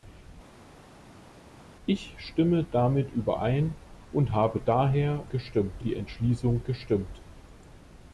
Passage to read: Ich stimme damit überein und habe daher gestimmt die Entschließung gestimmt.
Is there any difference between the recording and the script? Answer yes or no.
no